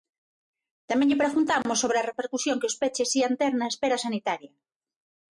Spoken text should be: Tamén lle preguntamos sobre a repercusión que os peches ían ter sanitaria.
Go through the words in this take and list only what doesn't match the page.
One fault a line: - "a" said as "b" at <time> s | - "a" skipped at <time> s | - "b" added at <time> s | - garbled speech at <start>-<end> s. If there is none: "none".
- "na espera" added at 3.5 s